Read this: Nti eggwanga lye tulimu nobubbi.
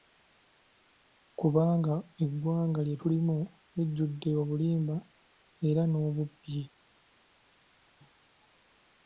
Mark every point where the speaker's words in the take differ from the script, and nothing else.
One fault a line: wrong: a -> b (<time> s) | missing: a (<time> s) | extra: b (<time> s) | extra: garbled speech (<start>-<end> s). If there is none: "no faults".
wrong: Nti -> Kubanga (1.4 s)
extra: lijjudde obulimba era (3.7 s)